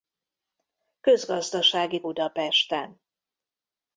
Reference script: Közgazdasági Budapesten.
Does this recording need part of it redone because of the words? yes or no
no